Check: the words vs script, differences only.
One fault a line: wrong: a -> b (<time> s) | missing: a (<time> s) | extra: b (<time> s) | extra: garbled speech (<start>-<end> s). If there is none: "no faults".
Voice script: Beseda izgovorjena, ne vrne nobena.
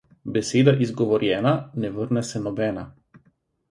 extra: se (2.3 s)